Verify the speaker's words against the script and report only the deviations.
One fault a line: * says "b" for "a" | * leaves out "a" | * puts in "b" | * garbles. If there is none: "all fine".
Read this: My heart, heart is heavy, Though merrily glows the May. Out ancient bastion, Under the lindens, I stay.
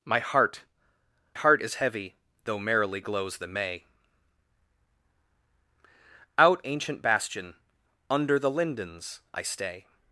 all fine